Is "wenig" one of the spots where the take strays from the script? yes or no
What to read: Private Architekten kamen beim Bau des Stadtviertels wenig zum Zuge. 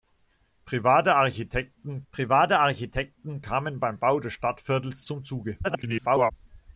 yes